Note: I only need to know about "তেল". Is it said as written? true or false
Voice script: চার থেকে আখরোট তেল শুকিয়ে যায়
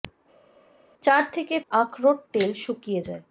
true